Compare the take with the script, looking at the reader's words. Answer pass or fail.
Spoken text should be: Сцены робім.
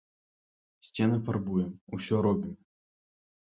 fail